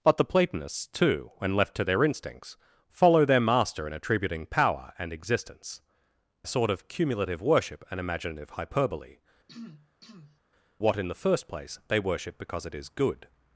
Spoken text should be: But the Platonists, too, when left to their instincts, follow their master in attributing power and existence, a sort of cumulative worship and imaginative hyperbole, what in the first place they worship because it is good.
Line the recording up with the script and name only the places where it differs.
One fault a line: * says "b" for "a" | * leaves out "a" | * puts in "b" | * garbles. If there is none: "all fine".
all fine